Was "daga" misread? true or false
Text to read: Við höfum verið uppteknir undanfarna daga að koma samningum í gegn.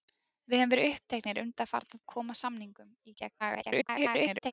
true